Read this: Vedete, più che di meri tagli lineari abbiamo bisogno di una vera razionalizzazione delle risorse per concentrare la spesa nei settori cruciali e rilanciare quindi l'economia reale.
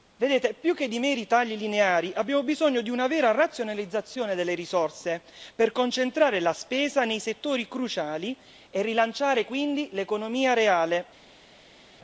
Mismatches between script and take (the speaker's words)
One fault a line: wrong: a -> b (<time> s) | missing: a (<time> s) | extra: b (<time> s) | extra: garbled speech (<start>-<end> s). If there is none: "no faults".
no faults